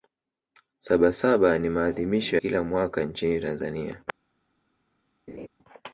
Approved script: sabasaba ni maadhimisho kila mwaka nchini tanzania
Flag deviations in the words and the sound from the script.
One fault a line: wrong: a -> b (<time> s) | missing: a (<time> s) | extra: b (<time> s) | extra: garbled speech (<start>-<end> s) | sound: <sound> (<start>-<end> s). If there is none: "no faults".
sound: laugh (5.3-5.5 s)